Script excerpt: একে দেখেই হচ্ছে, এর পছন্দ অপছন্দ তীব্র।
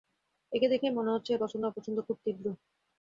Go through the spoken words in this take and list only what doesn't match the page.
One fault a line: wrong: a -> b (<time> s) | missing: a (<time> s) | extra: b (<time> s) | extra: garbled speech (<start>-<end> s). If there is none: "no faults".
extra: মনে (0.9 s)
extra: খুব (2.1 s)